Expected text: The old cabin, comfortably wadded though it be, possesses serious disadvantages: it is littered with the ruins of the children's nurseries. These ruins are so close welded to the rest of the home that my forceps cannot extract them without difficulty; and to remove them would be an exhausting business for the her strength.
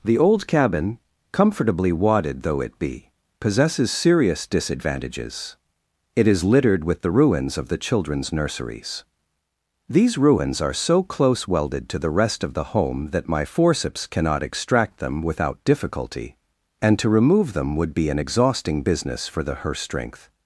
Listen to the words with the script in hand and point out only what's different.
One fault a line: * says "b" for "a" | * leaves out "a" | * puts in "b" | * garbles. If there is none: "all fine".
all fine